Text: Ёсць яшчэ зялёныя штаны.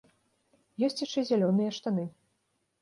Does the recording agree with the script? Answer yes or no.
yes